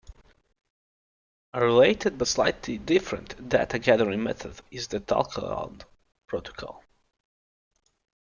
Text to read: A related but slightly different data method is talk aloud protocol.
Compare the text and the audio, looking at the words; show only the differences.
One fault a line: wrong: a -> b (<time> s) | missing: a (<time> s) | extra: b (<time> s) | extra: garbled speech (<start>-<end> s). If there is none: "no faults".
extra: gathering (3.8 s)
extra: the (4.9 s)